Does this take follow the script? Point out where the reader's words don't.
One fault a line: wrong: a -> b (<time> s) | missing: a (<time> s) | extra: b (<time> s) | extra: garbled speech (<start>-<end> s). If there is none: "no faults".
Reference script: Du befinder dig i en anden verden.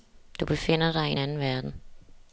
no faults